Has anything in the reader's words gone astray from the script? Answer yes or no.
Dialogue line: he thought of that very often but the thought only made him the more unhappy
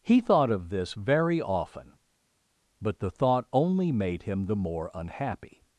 yes